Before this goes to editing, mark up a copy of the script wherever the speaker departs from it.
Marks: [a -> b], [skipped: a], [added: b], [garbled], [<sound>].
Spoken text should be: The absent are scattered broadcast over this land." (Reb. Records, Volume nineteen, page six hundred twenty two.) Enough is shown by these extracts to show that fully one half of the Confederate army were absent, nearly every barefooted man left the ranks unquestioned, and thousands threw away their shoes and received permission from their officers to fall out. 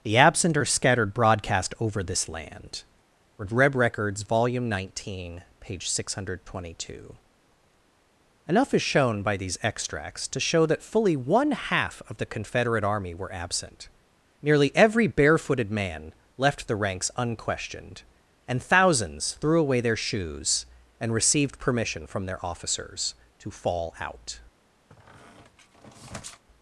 The absent are scattered broadcast over this land." (Reb. Records, Volume nineteen, page six hundred twenty two.) Enough is shown by these extracts to show that fully one half of the Confederate army were absent, nearly every barefooted man left the ranks unquestioned, and thousands threw away their shoes and received permission from their officers to fall out. [squeak]